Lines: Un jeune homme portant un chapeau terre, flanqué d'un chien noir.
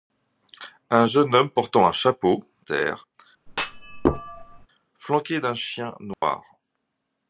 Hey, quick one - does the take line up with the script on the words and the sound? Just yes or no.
no